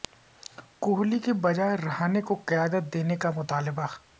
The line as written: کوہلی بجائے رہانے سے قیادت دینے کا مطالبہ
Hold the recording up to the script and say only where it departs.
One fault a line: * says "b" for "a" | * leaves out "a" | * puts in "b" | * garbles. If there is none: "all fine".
* puts in "کے"
* says "کو" for "سے"